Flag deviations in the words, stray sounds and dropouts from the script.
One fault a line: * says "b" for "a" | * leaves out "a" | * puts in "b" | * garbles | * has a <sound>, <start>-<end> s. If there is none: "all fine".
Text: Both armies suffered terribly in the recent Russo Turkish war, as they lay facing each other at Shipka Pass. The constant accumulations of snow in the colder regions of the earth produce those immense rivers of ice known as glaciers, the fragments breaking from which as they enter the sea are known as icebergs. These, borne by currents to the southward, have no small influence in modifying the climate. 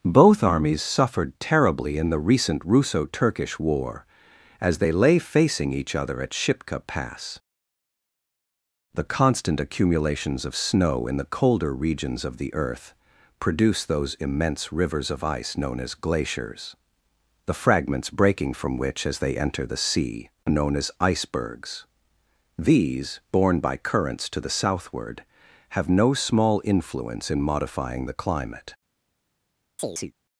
* leaves out "are"
* has a chirp, 29.8-30.1 s